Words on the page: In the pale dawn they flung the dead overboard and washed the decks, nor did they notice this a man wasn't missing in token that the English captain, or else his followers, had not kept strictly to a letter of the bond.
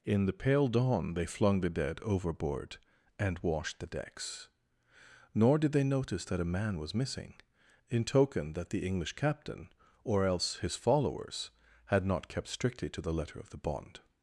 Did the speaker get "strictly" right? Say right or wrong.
right